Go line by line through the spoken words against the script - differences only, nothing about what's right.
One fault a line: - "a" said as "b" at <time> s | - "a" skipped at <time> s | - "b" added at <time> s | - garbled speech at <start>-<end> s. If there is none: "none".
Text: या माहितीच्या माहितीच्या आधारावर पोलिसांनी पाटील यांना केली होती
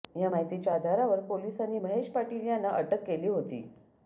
- "माहितीच्या" skipped at 0.7 s
- "महेश" added at 1.8 s
- "अटक" added at 2.7 s